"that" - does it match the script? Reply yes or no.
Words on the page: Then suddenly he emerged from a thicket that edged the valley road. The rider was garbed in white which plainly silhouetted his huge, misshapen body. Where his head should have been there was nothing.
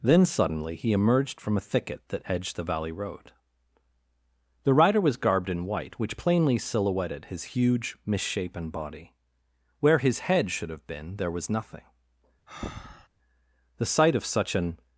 yes